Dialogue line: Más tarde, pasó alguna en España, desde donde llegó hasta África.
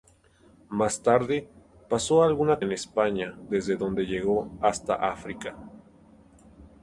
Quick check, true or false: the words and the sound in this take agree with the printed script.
true